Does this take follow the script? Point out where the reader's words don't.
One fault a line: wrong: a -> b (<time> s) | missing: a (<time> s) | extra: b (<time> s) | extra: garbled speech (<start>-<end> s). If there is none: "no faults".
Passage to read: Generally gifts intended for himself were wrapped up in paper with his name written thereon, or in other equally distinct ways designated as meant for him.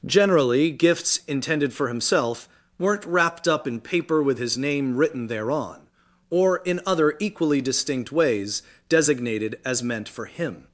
wrong: were -> weren't (2.8 s)